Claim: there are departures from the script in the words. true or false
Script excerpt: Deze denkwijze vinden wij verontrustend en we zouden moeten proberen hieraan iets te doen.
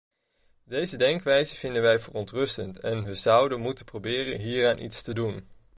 false